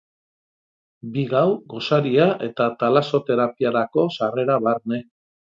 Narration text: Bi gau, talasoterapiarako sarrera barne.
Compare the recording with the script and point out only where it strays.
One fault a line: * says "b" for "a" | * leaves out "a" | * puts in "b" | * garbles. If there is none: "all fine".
* puts in "gosaria eta"